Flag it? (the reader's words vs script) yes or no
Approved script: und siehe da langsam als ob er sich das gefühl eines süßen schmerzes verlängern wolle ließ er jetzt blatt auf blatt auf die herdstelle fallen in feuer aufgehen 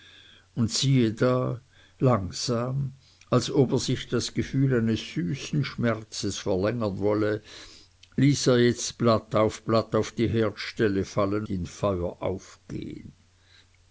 no